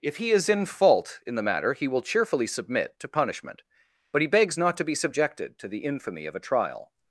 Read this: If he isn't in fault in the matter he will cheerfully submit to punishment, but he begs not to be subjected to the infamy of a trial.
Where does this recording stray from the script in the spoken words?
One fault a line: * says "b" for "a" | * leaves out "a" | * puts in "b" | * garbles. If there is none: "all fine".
* says "is" for "isn't"